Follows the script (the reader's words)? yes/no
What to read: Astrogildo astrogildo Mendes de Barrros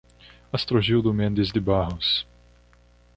no